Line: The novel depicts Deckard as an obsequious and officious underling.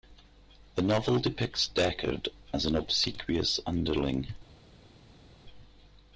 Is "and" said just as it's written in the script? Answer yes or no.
no